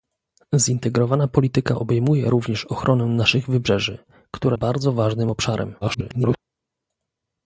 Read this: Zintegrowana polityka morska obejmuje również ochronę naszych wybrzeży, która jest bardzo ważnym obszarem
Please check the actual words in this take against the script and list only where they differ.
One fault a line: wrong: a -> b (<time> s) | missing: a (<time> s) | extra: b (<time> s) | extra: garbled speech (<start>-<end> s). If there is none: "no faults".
missing: morska (1.8 s)
missing: jest (4.6 s)
extra: garbled speech (5.8-6.4 s)